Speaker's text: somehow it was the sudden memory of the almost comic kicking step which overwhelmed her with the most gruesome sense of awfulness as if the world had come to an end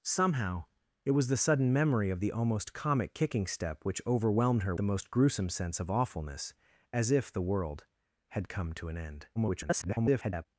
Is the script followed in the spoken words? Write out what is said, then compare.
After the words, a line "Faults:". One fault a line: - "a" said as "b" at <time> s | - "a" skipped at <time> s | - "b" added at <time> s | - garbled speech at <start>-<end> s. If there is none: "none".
somehow it was the sudden memory of the almost comic kicking step which overwhelmed her the most gruesome sense of awfulness as if the world had come to an end [garbled]
Faults:
- "with" skipped at 4.8 s
- garbled speech at 9.4-10.5 s